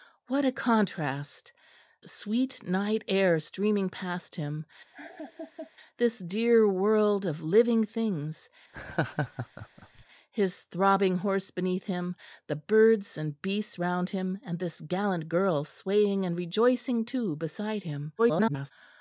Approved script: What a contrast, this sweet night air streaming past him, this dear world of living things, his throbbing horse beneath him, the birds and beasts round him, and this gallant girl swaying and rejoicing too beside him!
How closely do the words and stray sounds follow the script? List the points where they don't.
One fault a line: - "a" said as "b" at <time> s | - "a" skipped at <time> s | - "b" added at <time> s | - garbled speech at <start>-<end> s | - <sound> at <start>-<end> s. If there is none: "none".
- "this" skipped at 1.5 s
- laugh at 4.9-5.7 s
- laugh at 8.7-10.1 s
- garbled speech at 18.2-18.7 s